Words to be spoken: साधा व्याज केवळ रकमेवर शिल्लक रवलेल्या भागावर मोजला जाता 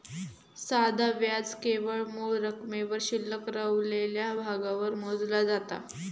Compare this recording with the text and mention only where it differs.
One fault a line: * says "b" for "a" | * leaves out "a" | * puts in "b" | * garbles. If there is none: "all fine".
* puts in "मूळ"